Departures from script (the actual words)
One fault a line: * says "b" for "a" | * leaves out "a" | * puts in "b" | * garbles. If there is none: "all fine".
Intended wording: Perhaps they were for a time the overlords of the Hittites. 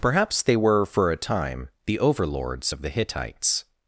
all fine